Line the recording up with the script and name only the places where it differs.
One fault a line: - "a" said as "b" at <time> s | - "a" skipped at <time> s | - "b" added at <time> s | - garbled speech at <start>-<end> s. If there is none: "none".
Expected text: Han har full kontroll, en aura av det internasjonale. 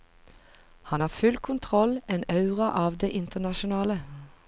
none